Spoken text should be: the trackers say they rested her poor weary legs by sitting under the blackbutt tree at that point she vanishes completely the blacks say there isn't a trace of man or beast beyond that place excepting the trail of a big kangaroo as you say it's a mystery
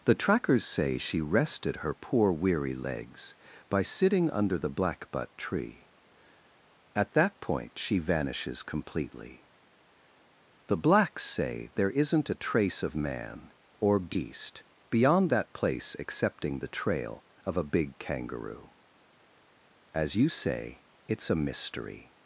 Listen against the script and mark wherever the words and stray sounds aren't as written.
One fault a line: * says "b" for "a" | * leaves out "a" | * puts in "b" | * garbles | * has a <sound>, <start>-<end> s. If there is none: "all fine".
* says "she" for "they"